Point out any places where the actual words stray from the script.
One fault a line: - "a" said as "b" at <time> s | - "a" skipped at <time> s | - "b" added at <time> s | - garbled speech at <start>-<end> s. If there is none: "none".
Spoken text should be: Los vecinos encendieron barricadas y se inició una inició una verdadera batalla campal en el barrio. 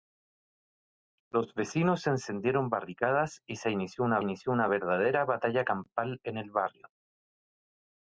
none